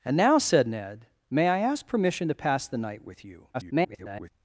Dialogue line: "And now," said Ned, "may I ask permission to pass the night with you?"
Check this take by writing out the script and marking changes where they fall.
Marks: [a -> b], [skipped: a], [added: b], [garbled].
"And now," said Ned, "may I ask permission to pass the night with you?" [garbled]